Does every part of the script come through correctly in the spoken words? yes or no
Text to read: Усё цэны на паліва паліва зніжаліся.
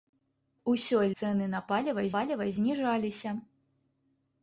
yes